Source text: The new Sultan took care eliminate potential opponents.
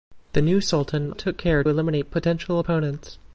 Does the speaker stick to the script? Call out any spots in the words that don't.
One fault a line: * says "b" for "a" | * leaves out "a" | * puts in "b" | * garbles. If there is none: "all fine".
all fine